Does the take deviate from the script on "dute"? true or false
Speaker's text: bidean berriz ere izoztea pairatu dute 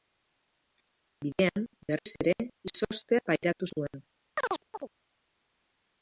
true